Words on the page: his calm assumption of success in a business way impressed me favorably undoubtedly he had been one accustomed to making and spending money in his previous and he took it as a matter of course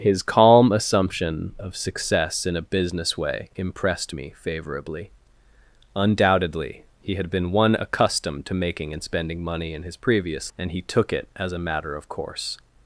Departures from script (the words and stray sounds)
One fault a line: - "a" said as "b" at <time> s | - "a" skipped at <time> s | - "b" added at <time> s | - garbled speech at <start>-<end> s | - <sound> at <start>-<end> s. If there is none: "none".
none